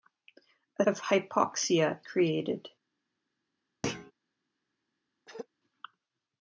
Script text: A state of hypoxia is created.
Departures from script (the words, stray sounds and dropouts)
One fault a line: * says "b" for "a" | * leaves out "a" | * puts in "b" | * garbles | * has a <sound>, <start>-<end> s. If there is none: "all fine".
* leaves out "state"
* leaves out "is"
* has a thud, 3.8-4.1 s
* has a throat clearing, 5.3-5.5 s